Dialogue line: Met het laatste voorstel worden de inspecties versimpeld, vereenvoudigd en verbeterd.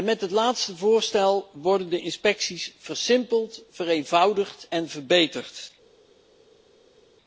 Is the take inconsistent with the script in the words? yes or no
no